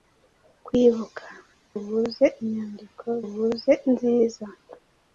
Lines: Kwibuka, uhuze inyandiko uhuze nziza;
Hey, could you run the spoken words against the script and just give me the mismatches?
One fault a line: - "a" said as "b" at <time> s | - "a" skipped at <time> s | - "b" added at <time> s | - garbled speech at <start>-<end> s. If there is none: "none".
none